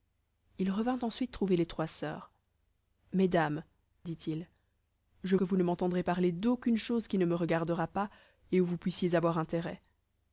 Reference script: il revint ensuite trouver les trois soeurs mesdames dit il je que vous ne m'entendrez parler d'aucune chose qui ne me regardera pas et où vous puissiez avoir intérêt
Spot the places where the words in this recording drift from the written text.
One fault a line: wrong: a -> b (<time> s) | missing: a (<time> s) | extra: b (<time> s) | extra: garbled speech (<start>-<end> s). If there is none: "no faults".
no faults